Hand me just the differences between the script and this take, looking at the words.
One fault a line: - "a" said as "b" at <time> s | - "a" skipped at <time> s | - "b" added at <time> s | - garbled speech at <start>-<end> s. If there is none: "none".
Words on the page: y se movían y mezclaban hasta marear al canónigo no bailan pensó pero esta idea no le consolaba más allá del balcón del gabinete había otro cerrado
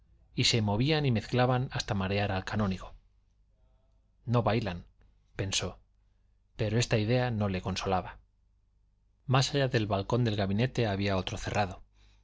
none